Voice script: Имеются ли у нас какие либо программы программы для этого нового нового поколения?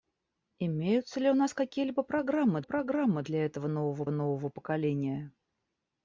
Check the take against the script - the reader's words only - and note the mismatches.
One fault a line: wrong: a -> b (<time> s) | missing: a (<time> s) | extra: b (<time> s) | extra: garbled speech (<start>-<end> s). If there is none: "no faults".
no faults